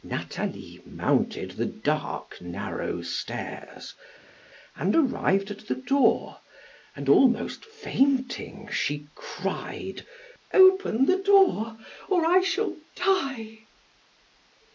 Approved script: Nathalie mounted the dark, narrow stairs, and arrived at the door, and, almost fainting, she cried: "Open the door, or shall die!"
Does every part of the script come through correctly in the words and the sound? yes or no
no